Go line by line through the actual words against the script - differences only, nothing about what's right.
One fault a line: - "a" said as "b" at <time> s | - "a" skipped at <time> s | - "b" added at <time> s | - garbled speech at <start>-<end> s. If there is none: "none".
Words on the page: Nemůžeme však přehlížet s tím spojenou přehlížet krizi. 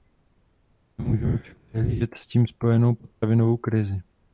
- "přehlížet" said as "potravinovou" at 3.0 s